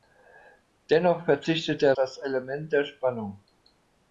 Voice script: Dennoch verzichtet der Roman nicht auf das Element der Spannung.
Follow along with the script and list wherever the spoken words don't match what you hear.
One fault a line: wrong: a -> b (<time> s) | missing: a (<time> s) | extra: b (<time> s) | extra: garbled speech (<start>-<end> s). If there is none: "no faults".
missing: Roman nicht auf (1.9 s)